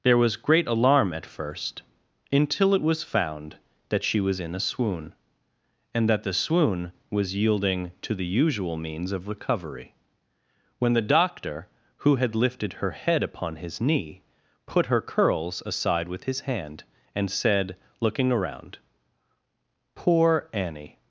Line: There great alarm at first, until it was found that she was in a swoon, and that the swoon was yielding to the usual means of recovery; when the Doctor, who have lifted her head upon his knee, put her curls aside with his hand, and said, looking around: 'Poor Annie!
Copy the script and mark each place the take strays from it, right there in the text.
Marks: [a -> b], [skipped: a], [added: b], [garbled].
There [added: was] great alarm at first, until it was found that she was in a swoon, and that the swoon was yielding to the usual means of recovery; when the Doctor, who [have -> had] lifted her head upon his knee, put her curls aside with his hand, and said, looking around: 'Poor Annie!